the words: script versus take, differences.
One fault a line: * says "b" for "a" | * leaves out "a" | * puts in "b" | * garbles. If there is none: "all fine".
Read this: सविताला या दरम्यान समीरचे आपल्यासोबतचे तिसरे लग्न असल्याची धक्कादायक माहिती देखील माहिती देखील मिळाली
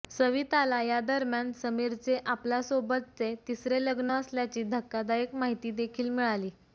* leaves out "माहिती देखील"